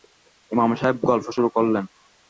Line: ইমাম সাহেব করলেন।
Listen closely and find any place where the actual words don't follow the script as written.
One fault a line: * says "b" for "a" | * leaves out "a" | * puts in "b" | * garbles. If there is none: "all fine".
* puts in "গল্প শুরু"